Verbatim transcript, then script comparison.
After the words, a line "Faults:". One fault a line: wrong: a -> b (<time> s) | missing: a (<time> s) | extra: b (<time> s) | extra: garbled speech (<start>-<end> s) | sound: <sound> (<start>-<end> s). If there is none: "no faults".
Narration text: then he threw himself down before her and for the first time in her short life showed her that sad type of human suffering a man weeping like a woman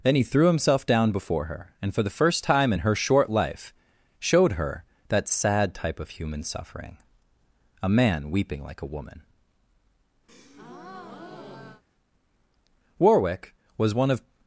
then he threw himself down before her and for the first time in her short life showed her that sad type of human suffering a man weeping like a woman warwick was one of
Faults:
sound: breath (10.3-11.8 s)
extra: warwick was one of (13.0 s)